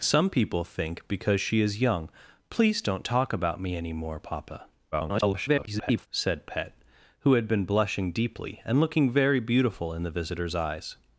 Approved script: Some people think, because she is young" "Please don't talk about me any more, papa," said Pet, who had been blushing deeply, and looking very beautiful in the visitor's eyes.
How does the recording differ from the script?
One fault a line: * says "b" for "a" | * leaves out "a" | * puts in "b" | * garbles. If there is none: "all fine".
* garbles